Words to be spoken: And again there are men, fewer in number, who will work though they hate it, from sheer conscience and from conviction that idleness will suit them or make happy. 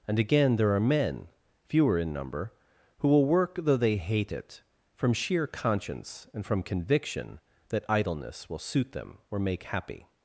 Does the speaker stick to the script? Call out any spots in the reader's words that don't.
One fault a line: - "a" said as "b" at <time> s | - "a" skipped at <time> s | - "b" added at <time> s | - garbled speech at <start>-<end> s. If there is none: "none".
none